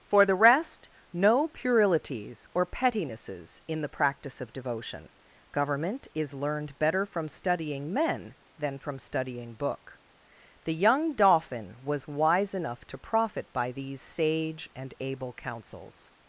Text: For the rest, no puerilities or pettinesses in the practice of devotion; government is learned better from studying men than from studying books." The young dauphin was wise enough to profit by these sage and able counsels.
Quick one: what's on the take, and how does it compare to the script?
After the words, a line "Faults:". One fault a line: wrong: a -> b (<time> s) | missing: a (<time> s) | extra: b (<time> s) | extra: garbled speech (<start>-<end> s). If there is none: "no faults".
For the rest, no puerilities or pettinesses in the practice of devotion; government is learned better from studying men than from studying book." The young dauphin was wise enough to profit by these sage and able counsels.
Faults:
wrong: books -> book (9.6 s)